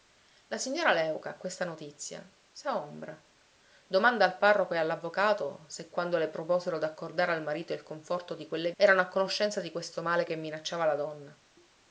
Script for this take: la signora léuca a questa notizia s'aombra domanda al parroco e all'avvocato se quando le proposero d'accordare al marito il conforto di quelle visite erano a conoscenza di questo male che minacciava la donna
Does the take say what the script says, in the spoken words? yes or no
no